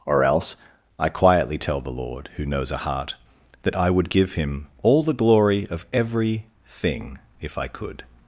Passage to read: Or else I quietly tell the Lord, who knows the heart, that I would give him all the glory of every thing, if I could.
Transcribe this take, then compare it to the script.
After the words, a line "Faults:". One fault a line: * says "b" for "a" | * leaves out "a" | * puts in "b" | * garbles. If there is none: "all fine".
Or else I quietly tell the Lord, who knows a heart, that I would give him all the glory of every thing, if I could.
Faults:
* says "a" for "the"